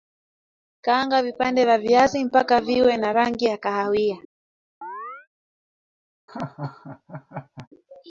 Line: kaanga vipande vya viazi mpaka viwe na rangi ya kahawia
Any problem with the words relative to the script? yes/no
no